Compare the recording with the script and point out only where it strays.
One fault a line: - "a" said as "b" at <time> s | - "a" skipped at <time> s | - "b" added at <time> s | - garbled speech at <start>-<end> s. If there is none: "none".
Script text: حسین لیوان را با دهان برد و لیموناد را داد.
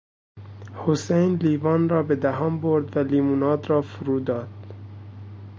- "با" said as "به" at 2.0 s
- "فرو" added at 3.8 s